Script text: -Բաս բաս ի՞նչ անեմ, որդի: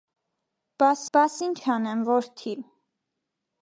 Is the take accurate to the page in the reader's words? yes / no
yes